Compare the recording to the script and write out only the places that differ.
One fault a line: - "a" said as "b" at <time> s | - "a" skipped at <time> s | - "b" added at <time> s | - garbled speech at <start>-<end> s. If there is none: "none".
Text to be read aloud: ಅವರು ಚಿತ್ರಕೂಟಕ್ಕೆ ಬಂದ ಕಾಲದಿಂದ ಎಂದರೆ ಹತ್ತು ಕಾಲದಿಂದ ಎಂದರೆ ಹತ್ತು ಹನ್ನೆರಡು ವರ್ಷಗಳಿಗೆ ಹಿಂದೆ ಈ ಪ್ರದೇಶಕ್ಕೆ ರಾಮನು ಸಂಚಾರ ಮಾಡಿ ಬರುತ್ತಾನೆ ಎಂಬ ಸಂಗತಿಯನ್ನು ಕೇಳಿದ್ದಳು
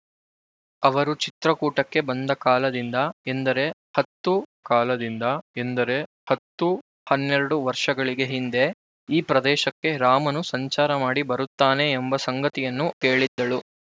none